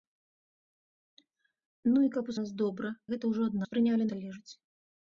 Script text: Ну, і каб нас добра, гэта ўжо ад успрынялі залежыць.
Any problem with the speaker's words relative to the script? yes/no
no